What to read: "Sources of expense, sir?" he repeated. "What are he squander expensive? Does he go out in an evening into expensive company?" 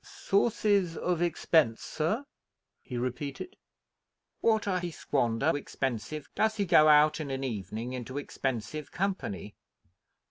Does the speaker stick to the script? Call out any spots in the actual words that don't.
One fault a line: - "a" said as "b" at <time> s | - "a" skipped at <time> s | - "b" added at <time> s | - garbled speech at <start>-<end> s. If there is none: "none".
none